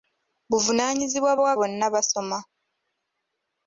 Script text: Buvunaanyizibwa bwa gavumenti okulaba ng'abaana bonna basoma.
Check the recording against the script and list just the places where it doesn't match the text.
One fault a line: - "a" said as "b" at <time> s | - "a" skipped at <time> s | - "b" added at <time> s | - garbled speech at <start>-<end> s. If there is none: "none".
- "gavumenti okulaba ng'abaana" skipped at 1.5 s